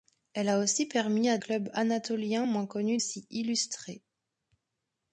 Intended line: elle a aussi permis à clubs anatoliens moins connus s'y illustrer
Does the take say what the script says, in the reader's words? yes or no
yes